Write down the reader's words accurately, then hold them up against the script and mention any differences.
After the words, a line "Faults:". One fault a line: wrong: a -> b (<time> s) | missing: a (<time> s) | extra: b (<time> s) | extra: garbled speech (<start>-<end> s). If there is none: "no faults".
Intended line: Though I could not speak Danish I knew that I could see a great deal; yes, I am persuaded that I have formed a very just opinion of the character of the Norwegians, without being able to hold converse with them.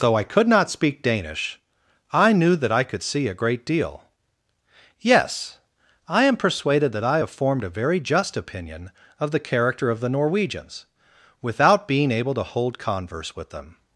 Though I could not speak Danish I knew that I could see a great deal; yes, I am persuaded that I have formed a very just opinion of the character of the Norwegians, without being able to hold converse with them.
Faults:
no faults